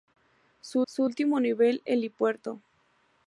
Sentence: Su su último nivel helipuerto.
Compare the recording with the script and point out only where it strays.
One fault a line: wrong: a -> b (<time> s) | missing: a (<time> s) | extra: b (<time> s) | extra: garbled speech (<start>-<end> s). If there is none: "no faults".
no faults